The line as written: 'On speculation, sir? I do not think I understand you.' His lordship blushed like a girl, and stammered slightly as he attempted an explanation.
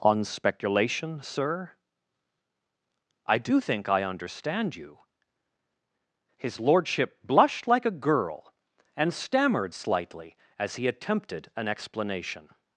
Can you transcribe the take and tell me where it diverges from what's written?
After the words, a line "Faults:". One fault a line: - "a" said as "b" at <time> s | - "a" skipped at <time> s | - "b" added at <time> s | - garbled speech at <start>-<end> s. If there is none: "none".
'On speculation, sir? I do think I understand you.' His lordship blushed like a girl, and stammered slightly as he attempted an explanation.
Faults:
- "not" skipped at 3.6 s